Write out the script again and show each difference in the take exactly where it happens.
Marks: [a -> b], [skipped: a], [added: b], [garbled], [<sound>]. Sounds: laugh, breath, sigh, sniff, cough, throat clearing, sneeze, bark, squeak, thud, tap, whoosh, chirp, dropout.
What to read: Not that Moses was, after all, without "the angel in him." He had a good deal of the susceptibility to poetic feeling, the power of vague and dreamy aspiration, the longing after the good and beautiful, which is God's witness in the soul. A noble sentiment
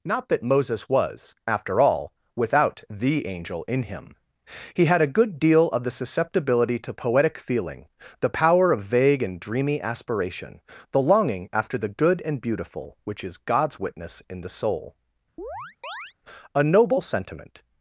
Not that Moses was, after all, without "the angel in him." He had a good deal of the susceptibility to poetic feeling, the power of vague and dreamy aspiration, the longing after the good and beautiful, which is God's witness in the soul. [chirp] A noble sentiment